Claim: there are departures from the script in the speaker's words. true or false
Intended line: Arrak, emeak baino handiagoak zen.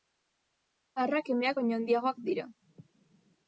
true